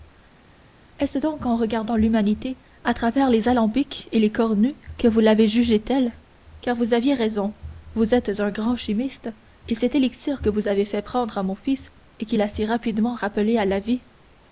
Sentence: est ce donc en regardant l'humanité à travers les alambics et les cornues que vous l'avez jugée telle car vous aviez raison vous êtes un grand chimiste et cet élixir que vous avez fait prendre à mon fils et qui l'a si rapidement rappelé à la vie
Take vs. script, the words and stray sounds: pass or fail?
pass